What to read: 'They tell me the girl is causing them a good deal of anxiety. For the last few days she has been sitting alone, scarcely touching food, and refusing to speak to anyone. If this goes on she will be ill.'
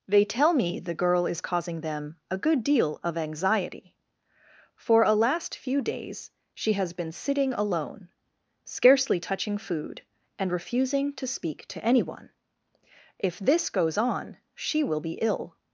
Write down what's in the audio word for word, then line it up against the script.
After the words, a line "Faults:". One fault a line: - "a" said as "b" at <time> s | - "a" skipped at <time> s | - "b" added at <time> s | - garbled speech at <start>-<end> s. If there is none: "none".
'They tell me the girl is causing them a good deal of anxiety. For a last few days she has been sitting alone, scarcely touching food, and refusing to speak to anyone. If this goes on she will be ill.'
Faults:
- "the" said as "a" at 5.0 s